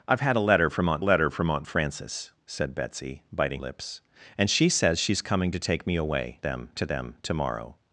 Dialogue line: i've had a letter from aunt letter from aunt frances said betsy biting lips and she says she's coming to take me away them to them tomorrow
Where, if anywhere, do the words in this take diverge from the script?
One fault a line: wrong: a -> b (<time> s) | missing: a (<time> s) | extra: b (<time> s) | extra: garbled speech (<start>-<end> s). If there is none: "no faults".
no faults